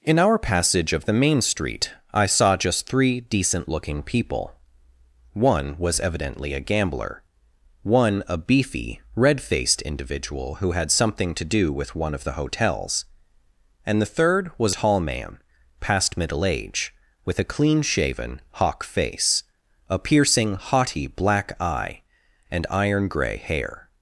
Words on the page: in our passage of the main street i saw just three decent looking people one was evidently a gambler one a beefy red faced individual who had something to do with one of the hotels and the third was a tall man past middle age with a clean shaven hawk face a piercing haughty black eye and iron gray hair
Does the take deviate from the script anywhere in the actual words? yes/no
yes